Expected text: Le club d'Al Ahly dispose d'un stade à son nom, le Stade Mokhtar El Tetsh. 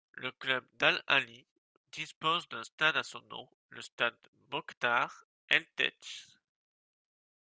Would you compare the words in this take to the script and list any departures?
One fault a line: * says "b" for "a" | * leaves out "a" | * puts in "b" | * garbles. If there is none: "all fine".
all fine